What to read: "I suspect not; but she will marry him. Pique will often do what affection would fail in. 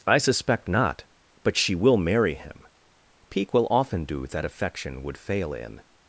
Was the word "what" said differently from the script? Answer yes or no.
yes